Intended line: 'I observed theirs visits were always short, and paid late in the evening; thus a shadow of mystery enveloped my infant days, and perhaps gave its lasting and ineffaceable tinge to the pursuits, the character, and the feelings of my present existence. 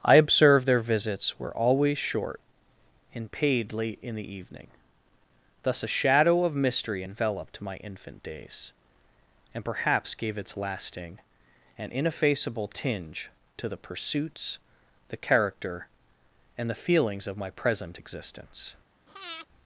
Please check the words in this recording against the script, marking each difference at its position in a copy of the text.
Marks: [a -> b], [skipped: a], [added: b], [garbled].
'I observed [theirs -> their] visits were always short, and paid late in the evening; thus a shadow of mystery enveloped my infant days, and perhaps gave its lasting and ineffaceable tinge to the pursuits, the character, and the feelings of my present existence.